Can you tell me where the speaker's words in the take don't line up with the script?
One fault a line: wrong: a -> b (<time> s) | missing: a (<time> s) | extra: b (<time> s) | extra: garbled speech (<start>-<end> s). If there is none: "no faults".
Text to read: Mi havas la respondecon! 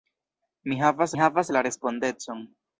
extra: havas (1.2 s)